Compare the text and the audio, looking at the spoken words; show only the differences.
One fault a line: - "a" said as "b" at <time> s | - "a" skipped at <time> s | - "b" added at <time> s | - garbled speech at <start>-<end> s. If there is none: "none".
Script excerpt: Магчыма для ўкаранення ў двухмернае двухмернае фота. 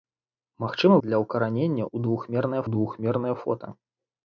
none